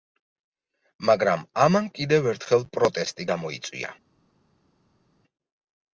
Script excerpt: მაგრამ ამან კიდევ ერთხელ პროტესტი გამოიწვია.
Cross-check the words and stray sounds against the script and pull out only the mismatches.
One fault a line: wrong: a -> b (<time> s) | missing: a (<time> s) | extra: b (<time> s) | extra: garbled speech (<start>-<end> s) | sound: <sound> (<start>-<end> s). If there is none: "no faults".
no faults